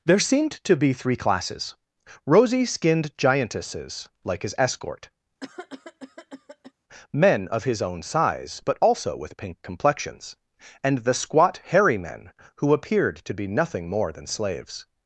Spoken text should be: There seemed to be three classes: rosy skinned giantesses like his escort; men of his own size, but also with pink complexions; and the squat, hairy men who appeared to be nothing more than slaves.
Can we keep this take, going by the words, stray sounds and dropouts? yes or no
no